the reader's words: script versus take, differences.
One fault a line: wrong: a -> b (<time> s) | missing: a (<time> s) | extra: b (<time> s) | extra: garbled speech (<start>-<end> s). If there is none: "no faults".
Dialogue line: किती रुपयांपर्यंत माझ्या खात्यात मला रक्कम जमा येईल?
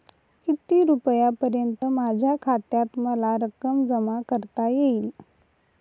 extra: करता (4.3 s)